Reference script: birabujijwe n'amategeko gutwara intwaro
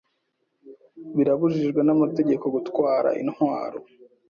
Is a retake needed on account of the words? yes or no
no